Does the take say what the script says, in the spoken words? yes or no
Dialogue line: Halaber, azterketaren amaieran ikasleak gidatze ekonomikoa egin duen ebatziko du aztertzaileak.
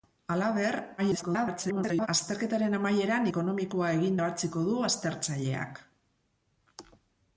no